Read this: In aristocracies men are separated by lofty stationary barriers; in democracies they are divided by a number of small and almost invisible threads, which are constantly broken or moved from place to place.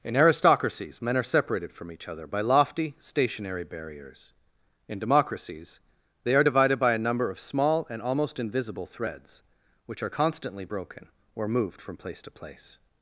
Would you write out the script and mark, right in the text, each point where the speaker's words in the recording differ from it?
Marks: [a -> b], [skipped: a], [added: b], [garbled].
In aristocracies men are separated [added: from each other] by lofty stationary barriers; in democracies they are divided by a number of small and almost invisible threads, which are constantly broken or moved from place to place.